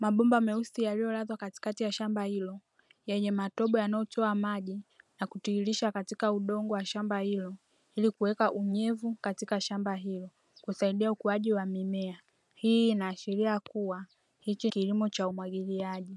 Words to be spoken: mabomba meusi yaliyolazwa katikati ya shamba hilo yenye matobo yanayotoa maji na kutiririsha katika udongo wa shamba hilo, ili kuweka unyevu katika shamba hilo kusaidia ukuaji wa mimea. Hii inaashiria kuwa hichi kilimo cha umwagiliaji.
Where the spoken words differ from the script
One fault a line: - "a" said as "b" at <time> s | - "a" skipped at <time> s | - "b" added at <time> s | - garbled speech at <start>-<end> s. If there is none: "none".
none